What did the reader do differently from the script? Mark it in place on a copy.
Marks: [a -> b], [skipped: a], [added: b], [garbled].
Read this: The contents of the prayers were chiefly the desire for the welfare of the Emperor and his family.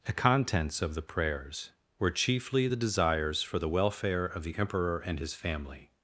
The contents of the prayers were chiefly the [desire -> desires] for the welfare of the Emperor and his family.